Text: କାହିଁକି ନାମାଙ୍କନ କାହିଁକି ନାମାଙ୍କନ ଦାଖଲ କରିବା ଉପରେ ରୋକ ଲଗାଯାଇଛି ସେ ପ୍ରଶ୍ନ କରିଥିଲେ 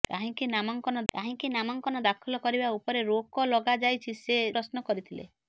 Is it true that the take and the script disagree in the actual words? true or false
false